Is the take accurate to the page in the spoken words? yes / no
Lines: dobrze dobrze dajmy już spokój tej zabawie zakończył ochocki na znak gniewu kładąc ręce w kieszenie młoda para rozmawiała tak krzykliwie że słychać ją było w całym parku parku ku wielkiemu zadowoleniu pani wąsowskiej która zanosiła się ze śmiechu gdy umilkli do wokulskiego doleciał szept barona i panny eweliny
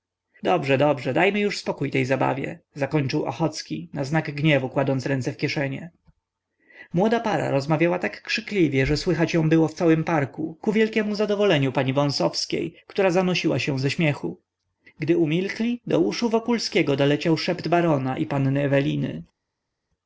no